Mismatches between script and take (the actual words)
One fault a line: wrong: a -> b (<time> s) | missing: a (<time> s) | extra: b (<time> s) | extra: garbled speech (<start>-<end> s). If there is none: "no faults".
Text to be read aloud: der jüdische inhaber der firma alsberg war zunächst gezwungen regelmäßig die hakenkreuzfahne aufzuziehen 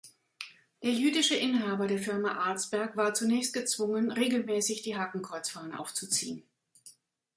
no faults